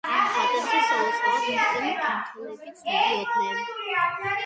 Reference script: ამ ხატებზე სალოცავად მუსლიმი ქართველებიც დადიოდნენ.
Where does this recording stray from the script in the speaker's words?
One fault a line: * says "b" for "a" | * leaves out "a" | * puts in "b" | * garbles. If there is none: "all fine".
all fine